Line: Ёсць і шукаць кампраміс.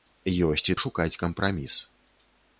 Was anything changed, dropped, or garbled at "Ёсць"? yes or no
no